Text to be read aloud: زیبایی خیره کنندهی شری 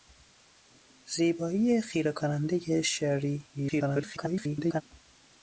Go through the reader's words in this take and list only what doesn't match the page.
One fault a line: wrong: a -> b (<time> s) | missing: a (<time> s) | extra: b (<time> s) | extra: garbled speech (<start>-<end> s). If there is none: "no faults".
extra: garbled speech (3.5-4.8 s)